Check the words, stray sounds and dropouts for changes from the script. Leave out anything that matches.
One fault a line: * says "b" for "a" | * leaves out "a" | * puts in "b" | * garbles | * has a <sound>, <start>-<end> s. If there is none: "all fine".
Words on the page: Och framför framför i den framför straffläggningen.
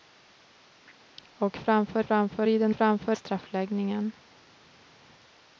all fine